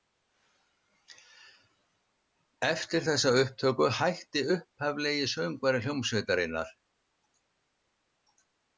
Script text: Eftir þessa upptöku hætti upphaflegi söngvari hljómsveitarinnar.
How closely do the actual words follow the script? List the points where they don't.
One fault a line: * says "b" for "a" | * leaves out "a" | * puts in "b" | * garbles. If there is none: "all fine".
all fine